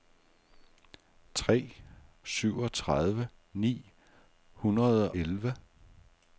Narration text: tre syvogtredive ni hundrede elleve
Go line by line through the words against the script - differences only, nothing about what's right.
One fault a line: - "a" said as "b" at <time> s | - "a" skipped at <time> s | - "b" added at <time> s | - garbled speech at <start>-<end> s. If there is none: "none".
none